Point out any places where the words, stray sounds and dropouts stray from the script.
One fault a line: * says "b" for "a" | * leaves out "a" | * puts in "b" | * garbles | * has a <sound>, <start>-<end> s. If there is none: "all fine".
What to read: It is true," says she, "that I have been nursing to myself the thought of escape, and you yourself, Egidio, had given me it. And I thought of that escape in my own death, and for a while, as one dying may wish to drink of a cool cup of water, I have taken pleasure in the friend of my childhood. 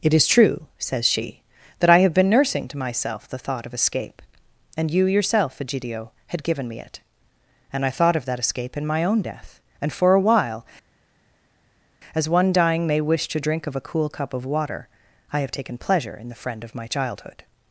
all fine